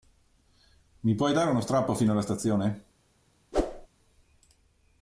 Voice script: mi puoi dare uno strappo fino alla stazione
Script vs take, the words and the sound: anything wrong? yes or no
yes